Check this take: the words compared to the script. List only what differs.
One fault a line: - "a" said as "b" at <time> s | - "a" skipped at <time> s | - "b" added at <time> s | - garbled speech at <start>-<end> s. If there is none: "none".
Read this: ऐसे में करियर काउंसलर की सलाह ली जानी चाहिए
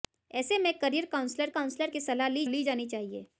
- "काउंसलर" added at 1.5 s
- "ली" added at 2.5 s